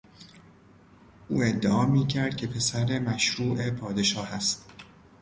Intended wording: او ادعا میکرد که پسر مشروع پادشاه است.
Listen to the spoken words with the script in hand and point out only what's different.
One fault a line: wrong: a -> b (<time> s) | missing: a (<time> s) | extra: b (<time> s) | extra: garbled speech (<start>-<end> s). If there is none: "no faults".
no faults